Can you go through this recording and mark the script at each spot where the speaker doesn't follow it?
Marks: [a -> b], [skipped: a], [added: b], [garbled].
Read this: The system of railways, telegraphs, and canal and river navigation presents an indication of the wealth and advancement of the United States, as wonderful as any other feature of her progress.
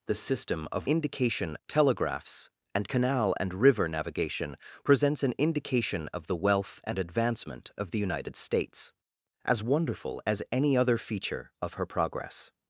The system of [railways, -> indication] telegraphs, and canal and river navigation presents an indication of the wealth and advancement of the United States, as wonderful as any other feature of her progress.